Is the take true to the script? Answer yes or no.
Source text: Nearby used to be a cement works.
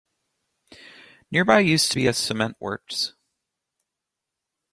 yes